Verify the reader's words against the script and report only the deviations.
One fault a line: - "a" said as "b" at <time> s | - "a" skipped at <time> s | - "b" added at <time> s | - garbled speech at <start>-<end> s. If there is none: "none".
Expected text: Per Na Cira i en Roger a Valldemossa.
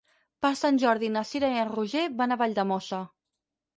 - "Sant Jordi" added at 0.6 s
- "van" added at 2.2 s